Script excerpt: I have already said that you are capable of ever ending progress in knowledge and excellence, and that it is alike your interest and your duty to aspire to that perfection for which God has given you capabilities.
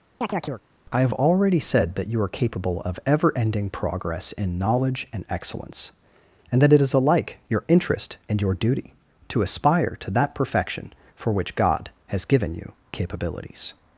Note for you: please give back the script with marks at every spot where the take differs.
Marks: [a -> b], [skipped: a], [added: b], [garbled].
I have already said that you are capable of ever ending progress in knowledge and excellence, and that it is alike your interest and your duty to aspire to that perfection for which God has given you capabilities.